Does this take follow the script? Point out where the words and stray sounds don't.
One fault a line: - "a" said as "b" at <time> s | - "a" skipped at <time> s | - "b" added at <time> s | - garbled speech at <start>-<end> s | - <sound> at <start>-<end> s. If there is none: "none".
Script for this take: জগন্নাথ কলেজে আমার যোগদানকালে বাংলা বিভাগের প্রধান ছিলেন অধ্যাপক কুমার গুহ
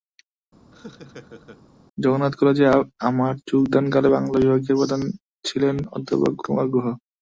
- laugh at 0.7-1.6 s